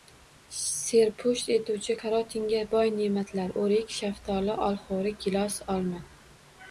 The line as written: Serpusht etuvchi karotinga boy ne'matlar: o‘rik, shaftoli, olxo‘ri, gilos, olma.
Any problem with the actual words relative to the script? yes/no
no